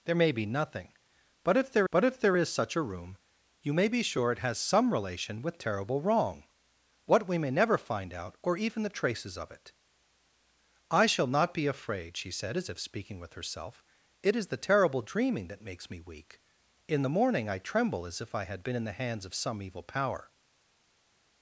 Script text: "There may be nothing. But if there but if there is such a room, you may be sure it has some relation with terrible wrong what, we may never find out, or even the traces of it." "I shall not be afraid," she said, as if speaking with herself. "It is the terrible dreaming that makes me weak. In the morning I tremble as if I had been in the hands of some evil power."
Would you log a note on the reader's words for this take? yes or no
no